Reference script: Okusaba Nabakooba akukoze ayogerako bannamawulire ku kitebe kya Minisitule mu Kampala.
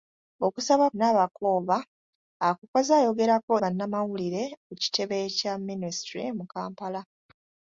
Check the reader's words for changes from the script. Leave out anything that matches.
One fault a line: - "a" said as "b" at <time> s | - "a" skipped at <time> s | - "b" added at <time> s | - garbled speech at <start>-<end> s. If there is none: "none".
none